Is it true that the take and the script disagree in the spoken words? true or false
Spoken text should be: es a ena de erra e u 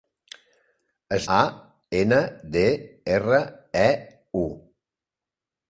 false